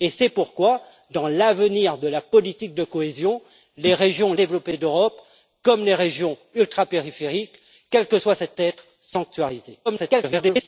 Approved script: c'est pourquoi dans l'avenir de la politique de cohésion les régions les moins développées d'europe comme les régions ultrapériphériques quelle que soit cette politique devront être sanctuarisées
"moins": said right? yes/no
no